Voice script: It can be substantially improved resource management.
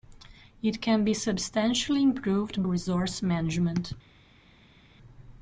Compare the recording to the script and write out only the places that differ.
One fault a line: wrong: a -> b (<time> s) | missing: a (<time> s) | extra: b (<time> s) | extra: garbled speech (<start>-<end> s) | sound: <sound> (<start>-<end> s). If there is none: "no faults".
no faults